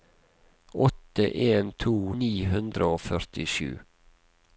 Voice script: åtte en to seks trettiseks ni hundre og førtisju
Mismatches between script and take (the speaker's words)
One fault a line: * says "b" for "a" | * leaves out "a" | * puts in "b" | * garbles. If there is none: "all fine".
* leaves out "seks trettiseks"